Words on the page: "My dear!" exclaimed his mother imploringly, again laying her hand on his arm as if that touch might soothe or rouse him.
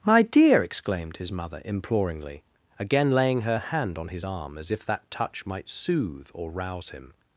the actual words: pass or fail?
pass